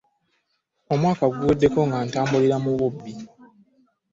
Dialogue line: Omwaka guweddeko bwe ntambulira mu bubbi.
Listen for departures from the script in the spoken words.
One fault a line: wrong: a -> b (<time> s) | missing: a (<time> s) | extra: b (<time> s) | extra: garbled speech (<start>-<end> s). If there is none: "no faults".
wrong: bwe -> nga (1.9 s)